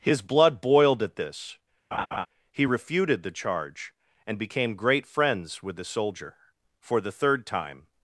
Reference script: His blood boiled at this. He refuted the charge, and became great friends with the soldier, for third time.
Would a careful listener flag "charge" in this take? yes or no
no